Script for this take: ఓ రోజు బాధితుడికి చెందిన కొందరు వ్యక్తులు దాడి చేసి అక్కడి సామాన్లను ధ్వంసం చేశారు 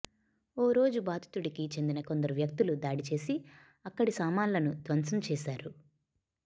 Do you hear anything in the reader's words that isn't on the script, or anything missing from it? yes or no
no